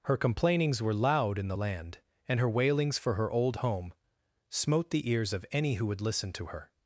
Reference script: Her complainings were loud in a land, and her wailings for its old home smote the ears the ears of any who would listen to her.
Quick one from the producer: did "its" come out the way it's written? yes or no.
no